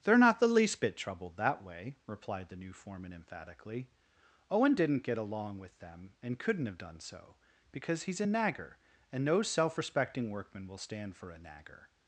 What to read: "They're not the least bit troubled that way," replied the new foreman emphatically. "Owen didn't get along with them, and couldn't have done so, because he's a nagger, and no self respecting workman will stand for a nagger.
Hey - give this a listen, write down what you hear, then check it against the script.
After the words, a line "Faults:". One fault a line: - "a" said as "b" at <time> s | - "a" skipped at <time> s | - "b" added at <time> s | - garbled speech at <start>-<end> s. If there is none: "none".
"They're not the least bit troubled that way," replied the new foreman emphatically. "Owen didn't get along with them, and couldn't have done so, because he's a nagger, and no self respecting workman will stand for a nagger.
Faults:
none